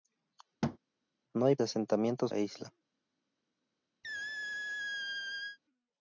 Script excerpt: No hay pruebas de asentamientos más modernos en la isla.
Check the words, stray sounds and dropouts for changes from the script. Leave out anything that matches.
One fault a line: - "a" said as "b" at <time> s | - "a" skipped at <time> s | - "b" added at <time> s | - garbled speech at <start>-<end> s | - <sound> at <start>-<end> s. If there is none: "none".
- thud at 0.6-0.8 s
- "pruebas" skipped at 1.6 s
- "más modernos en" skipped at 2.3 s
- squeak at 4.0-5.6 s